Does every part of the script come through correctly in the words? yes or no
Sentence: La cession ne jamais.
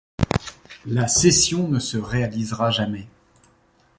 no